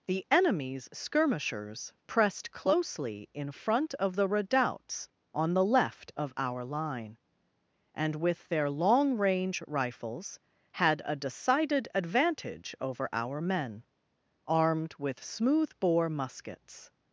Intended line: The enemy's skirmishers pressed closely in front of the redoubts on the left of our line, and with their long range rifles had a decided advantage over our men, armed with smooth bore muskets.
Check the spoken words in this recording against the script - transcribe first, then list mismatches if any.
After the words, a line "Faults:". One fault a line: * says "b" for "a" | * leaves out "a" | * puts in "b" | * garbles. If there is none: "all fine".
The enemy's skirmishers pressed closely in front of the redoubts on the left of our line, and with their long range rifles had a decided advantage over our men, armed with smooth bore muskets.
Faults:
all fine